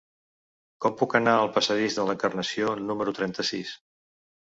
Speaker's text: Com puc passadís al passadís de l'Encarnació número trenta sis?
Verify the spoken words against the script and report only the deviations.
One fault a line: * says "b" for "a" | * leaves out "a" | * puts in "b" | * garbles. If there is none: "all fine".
* says "anar" for "passadís"